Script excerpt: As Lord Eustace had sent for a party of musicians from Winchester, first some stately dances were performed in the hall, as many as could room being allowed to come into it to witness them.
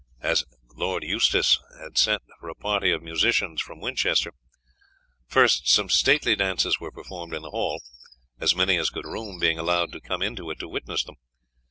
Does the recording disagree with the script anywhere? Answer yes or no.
no